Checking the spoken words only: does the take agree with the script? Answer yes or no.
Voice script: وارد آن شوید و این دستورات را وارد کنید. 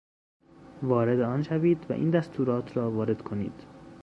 yes